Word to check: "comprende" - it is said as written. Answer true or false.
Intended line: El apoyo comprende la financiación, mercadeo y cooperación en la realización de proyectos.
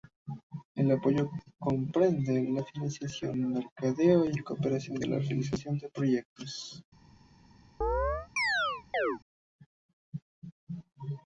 true